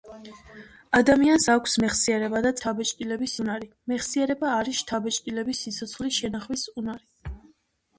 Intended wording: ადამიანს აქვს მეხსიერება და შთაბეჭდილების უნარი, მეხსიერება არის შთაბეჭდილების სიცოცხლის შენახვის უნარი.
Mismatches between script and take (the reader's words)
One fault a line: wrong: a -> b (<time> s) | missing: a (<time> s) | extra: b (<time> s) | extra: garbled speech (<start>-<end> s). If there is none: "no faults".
no faults